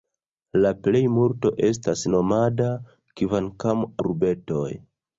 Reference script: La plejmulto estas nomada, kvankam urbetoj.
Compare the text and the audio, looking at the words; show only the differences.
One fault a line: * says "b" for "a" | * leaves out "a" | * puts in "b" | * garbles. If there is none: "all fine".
all fine